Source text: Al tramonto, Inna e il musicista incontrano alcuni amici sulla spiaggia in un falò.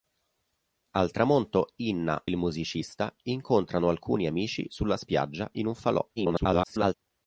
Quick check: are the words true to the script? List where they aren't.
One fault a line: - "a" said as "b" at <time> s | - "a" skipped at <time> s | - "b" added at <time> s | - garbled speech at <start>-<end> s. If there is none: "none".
- "e" skipped at 2.3 s
- garbled speech at 6.2-6.9 s